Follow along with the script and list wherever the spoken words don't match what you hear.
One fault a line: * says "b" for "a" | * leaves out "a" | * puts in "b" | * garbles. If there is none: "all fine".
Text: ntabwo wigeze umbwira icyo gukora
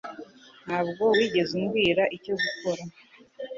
all fine